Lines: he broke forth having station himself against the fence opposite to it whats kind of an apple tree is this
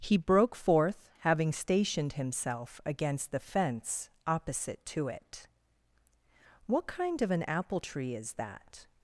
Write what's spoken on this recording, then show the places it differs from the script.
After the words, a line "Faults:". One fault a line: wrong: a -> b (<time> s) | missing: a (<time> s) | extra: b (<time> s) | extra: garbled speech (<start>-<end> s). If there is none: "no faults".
he broke forth having stationed himself against the fence opposite to it what kind of an apple tree is that
Faults:
wrong: station -> stationed (1.5 s)
wrong: whats -> what (6.7 s)
wrong: this -> that (8.4 s)